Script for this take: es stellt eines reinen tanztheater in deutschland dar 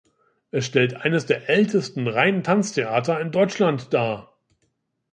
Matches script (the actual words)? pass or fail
fail